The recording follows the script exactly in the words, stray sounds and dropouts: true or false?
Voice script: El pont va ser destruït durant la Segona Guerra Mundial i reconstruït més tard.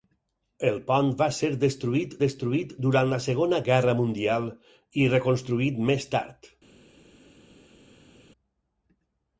false